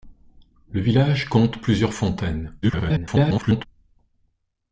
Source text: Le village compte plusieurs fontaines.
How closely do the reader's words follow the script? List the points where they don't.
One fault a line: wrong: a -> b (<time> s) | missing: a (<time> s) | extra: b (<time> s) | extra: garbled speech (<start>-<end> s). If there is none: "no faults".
extra: garbled speech (2.6-3.7 s)